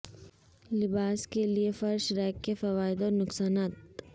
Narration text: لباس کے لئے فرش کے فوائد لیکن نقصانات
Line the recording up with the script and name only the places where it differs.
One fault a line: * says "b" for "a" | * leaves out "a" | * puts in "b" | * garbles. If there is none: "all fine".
* puts in "ریک"
* says "اور" for "لیکن"